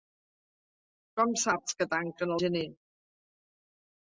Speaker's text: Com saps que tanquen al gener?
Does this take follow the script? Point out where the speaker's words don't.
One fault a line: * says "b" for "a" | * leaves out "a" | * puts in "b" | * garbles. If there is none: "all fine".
* leaves out "al"